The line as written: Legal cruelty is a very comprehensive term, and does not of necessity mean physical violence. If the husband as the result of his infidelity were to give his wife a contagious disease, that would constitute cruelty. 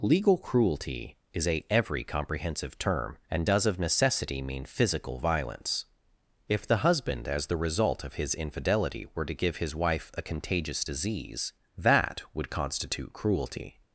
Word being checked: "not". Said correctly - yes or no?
no